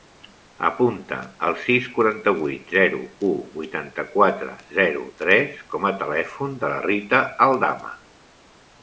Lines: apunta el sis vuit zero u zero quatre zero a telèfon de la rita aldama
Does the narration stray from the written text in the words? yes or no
yes